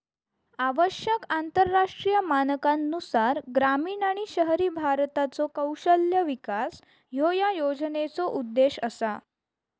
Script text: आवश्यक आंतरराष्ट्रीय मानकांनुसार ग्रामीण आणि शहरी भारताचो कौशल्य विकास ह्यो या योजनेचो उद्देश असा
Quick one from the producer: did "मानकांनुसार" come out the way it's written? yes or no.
yes